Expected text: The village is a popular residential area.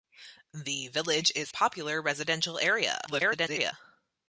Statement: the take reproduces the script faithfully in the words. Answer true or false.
false